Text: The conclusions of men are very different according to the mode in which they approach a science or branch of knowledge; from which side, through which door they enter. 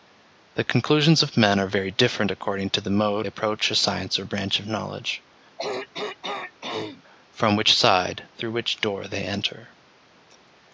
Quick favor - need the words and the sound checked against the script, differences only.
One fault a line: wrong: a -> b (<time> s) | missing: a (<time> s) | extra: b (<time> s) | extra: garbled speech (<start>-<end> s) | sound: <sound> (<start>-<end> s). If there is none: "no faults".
missing: in which they (3.3 s)
sound: throat clearing (5.6-7.0 s)